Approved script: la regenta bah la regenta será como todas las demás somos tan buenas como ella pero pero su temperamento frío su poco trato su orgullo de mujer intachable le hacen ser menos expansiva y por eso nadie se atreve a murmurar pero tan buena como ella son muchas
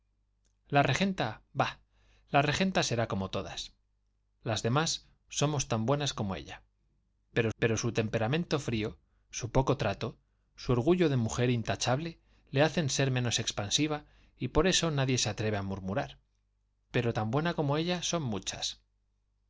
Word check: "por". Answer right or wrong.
right